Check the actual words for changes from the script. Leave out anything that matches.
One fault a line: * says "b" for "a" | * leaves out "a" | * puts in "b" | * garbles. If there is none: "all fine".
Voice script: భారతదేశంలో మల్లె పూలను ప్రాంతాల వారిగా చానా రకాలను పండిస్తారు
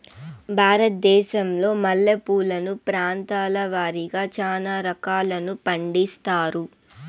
all fine